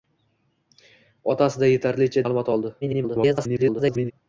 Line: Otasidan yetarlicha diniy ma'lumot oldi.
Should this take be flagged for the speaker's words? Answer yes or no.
yes